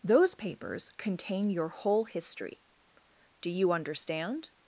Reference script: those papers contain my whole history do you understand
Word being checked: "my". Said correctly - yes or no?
no